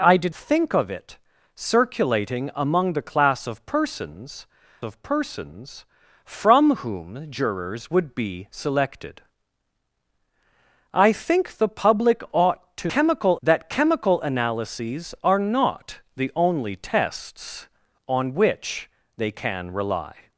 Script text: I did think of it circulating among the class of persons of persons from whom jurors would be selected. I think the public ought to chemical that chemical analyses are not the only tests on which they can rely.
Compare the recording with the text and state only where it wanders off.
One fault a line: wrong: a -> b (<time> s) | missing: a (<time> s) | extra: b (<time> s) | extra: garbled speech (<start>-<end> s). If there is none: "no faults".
no faults